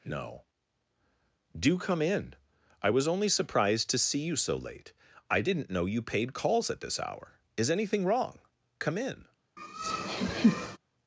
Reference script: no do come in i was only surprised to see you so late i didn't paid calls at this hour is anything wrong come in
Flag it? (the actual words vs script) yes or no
yes